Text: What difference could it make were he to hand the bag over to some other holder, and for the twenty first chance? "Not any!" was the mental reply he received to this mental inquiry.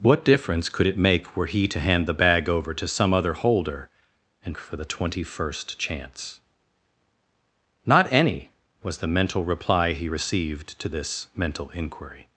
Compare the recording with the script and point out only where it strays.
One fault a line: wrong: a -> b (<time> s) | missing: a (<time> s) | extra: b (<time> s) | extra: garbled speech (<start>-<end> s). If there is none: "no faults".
no faults